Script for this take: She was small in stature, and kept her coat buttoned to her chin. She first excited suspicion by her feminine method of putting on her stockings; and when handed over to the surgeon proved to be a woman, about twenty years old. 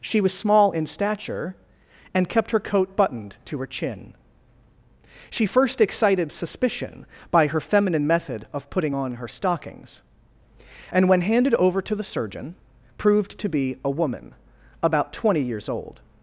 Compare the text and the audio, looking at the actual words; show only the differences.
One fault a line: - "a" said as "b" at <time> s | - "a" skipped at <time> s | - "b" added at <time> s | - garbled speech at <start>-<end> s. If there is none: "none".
none